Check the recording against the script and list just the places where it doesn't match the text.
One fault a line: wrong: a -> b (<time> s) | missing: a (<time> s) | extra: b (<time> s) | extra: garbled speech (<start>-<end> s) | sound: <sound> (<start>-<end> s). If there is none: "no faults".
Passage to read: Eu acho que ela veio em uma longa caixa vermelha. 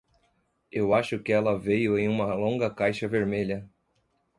no faults